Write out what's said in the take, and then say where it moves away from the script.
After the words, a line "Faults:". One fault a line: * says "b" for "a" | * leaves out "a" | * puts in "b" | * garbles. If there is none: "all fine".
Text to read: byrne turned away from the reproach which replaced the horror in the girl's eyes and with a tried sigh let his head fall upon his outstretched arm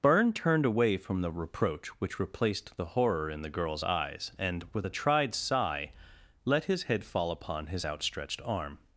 byrne turned away from the reproach which replaced the horror in the girl's eyes and with a tried sigh let his head fall upon his outstretched arm
Faults:
all fine